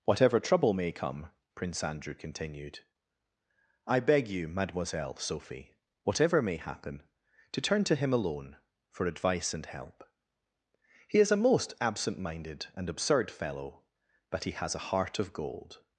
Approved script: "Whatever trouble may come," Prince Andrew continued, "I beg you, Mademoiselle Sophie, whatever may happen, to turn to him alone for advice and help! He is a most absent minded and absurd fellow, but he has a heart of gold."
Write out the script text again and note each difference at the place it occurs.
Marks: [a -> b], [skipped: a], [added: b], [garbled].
"Whatever trouble may come," Prince Andrew continued, "I beg you, Mademoiselle Sophie, whatever may happen, to turn to him alone for advice and help! He is a most absent minded and absurd fellow, but he has a heart of gold."